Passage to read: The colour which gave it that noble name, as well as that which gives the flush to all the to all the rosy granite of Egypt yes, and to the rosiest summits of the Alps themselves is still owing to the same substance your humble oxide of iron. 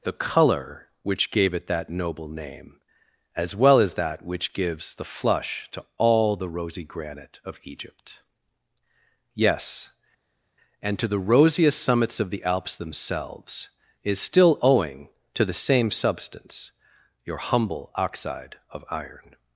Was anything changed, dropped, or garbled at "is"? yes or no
no